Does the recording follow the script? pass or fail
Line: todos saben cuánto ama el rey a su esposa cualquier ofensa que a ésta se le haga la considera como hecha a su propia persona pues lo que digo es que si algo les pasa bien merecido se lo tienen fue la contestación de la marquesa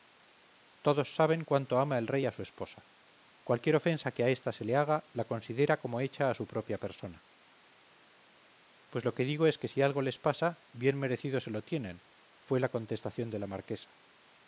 pass